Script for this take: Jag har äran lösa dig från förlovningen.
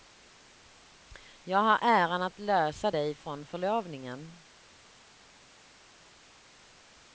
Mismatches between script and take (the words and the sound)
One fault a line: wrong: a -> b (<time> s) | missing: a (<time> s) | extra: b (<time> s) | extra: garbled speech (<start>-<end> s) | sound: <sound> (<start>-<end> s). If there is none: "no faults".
extra: att (2.2 s)